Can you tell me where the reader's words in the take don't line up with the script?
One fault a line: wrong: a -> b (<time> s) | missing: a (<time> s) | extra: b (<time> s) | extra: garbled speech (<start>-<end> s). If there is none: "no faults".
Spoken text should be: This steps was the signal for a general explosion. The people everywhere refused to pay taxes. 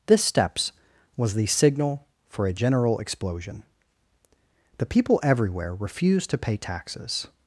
no faults